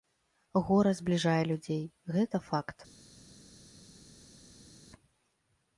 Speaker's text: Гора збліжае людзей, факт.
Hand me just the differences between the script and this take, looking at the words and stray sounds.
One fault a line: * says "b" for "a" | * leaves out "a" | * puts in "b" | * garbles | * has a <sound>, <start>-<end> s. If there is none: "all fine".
* puts in "гэта"